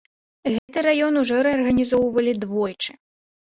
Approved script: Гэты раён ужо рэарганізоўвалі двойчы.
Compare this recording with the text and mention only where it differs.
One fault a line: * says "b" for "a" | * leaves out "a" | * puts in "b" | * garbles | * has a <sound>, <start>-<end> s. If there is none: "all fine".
* has a dropout, 0.6-0.7 s